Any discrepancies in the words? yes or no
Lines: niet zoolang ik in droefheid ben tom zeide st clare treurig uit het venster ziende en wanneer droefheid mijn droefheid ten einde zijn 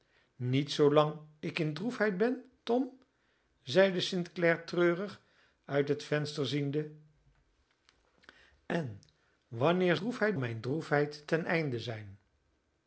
no